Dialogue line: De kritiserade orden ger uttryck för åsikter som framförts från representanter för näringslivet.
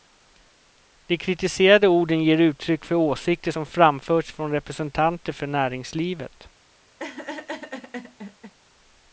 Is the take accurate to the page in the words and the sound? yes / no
no